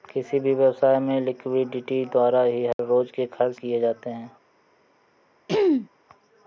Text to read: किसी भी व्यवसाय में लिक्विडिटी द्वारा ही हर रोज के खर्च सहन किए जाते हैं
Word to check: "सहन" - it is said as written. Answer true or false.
false